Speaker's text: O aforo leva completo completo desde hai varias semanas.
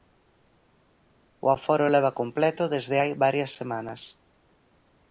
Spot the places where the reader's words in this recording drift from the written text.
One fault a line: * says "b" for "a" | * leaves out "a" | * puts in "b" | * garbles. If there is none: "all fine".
* leaves out "completo"